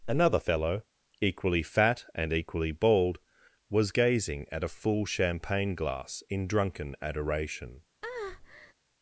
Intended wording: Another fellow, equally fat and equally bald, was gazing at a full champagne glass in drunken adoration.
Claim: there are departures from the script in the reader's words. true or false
false